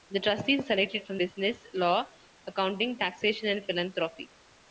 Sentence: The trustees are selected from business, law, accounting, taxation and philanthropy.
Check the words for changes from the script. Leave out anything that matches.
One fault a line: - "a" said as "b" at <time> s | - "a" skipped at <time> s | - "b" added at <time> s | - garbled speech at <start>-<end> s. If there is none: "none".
none